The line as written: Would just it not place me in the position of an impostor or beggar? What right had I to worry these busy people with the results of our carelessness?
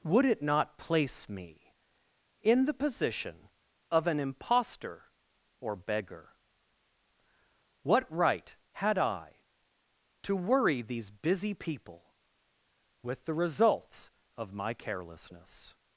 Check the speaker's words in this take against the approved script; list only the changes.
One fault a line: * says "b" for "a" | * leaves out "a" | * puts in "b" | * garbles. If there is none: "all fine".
* leaves out "just"
* says "my" for "our"